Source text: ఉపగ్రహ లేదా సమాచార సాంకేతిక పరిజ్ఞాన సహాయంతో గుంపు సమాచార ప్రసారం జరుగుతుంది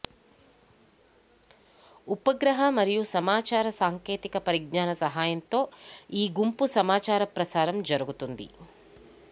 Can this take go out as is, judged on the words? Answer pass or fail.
fail